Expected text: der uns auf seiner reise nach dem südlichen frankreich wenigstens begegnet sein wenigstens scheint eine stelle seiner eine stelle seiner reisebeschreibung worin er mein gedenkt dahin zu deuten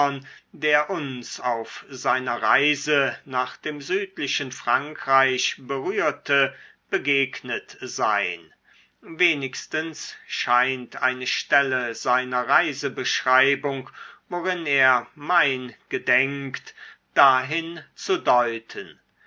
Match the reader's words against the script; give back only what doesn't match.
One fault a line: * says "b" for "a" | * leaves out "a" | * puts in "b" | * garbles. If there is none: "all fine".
* says "berührte" for "wenigstens"
* leaves out "eine stelle seiner"